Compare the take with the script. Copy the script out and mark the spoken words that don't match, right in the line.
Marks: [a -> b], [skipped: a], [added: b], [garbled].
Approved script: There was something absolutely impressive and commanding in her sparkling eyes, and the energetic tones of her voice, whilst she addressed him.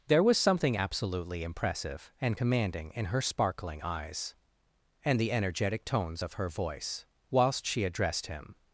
There was something absolutely impressive and commanding in her sparkling eyes, and the energetic tones of her voice, whilst she addressed him.